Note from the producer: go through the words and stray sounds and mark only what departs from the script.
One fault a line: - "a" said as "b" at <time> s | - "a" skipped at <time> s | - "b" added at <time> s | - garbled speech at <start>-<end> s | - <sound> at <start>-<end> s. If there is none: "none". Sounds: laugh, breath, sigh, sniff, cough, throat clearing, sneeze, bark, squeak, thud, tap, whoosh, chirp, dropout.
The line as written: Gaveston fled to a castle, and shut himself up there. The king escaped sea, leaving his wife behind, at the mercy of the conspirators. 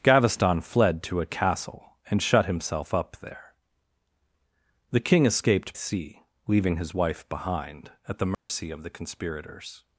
- dropout at 8.3-8.5 s